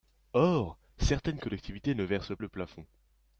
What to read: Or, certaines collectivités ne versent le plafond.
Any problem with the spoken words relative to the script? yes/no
no